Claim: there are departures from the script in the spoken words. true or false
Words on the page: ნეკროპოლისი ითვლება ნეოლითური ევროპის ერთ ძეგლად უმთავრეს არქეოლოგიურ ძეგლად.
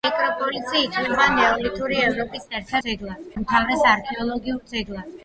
false